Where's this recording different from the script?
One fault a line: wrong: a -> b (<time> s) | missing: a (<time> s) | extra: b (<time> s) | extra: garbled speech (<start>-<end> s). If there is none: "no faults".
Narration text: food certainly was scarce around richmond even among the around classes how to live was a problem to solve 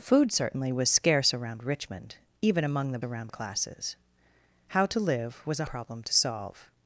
no faults